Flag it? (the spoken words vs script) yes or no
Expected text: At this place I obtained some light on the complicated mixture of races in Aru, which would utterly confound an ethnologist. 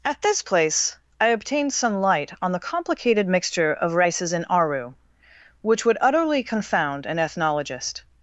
no